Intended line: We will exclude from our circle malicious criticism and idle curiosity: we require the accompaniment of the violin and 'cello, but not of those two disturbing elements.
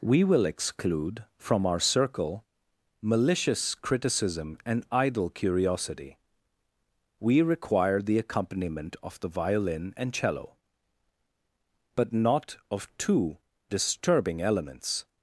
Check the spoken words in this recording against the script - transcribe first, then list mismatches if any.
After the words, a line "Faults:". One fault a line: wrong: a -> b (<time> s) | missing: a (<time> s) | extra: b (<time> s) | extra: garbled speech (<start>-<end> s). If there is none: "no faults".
We will exclude from our circle malicious criticism and idle curiosity: we require the accompaniment of the violin and 'cello, but not of two disturbing elements.
Faults:
missing: those (12.9 s)